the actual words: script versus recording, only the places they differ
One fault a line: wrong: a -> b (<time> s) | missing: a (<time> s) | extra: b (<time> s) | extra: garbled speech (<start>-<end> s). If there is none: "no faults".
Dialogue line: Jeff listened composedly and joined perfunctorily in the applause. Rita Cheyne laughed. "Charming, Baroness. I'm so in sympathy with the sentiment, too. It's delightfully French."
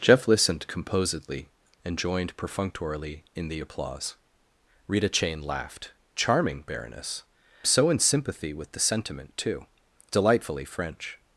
missing: I'm (7.2 s)
missing: It's (9.6 s)